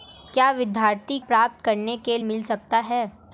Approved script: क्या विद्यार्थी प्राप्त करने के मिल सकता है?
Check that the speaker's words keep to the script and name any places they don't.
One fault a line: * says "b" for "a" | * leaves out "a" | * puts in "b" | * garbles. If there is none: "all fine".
all fine